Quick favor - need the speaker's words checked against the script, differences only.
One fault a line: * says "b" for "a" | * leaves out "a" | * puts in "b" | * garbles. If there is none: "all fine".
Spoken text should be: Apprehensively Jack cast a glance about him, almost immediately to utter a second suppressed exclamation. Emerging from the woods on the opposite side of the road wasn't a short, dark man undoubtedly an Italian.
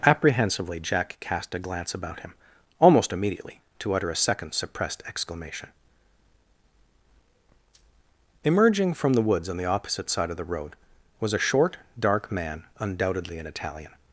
* says "was" for "wasn't"